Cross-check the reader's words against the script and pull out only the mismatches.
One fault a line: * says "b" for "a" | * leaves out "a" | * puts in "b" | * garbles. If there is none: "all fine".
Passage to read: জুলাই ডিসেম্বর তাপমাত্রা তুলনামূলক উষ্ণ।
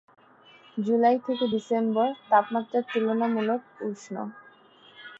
* puts in "থেকে"